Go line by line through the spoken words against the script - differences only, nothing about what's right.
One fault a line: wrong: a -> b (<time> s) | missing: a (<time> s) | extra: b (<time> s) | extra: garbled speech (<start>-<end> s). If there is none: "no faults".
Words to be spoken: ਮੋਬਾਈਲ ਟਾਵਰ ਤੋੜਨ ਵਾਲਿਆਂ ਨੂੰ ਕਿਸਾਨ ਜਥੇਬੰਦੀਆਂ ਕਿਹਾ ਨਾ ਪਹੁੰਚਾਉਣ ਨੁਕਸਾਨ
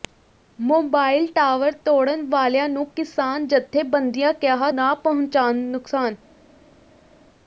no faults